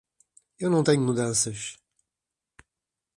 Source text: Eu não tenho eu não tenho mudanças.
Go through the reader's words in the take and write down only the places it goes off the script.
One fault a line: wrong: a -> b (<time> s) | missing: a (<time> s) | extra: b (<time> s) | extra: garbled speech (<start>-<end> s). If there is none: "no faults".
missing: eu não tenho (1.0 s)